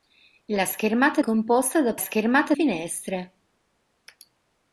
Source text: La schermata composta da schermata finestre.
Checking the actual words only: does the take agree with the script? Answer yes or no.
yes